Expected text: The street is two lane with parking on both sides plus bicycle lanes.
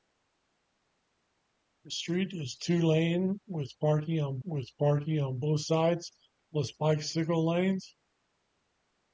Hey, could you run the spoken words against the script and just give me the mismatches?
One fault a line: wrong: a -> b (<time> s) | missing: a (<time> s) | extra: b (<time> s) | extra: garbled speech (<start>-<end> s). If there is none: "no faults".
extra: with parking on (4.4 s)